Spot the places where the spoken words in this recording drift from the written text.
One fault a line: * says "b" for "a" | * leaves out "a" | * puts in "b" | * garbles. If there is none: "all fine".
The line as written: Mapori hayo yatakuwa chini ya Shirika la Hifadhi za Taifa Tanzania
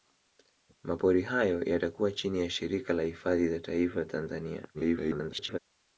* garbles